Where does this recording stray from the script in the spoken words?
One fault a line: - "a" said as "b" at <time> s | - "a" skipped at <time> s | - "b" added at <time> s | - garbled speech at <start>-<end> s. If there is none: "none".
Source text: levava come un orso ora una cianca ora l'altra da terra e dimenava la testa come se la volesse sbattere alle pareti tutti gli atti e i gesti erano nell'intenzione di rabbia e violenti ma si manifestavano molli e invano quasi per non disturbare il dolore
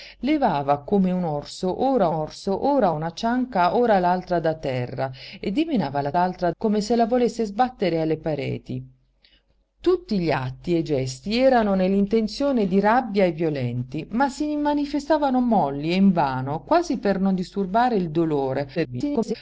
- "orso ora" added at 2.1 s
- "testa" said as "l'altra" at 6.1 s
- garbled speech at 18.8-19.3 s